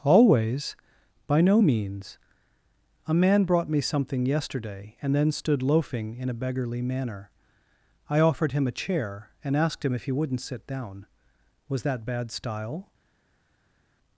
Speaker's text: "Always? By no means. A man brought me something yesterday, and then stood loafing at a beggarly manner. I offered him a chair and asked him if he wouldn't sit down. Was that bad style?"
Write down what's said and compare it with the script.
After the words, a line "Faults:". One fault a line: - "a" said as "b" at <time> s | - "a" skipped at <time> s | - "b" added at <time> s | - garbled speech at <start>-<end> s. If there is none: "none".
"Always? By no means. A man brought me something yesterday, and then stood loafing in a beggarly manner. I offered him a chair and asked him if he wouldn't sit down. Was that bad style?"
Faults:
- "at" said as "in" at 6.2 s